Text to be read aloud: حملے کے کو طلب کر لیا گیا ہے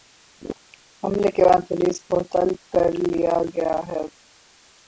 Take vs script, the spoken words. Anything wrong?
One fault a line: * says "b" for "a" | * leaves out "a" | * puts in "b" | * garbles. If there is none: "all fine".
* puts in "بعد پولیس"